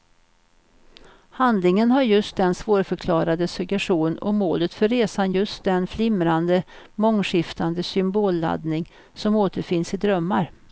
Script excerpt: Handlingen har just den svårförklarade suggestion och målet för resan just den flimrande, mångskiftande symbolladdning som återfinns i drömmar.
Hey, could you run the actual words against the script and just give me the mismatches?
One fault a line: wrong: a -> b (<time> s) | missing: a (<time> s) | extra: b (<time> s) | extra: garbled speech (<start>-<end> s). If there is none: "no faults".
no faults